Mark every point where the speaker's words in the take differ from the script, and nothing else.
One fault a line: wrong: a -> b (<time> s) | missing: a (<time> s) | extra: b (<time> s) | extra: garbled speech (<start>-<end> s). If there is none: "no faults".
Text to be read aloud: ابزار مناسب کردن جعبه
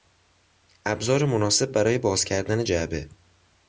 extra: برای باز (1.7 s)